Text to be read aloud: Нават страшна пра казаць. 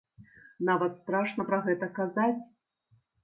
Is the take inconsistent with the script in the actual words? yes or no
yes